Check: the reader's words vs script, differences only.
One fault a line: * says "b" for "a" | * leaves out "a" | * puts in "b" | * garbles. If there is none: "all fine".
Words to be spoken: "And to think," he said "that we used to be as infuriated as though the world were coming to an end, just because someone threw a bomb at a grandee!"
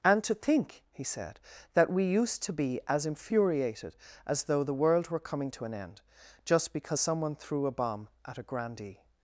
all fine